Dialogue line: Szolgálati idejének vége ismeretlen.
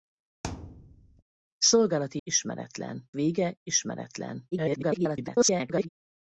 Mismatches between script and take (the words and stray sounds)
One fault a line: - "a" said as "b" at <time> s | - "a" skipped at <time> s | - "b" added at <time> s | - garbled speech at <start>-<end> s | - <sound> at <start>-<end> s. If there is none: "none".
- thud at 0.4-1.2 s
- "idejének" said as "ismeretlen" at 2.2 s
- garbled speech at 4.5-5.9 s